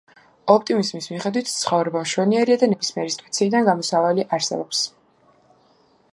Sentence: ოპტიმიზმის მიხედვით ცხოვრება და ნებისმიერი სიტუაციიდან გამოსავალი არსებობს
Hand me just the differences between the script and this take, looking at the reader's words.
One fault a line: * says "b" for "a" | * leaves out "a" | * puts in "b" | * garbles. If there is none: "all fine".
* puts in "მშვენიერია"